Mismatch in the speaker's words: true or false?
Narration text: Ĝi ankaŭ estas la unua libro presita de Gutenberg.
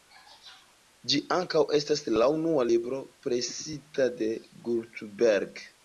false